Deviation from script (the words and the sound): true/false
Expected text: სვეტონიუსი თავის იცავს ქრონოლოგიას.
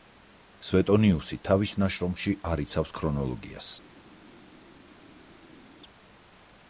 true